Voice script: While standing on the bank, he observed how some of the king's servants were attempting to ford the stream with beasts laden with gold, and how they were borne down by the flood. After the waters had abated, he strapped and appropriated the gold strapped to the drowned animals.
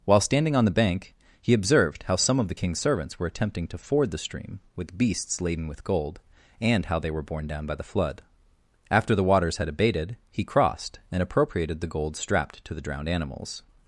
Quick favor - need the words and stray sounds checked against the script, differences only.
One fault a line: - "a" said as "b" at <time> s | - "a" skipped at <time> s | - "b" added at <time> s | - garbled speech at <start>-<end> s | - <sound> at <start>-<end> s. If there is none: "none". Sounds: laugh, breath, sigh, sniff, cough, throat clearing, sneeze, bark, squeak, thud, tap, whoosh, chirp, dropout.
- "strapped" said as "crossed" at 10.4 s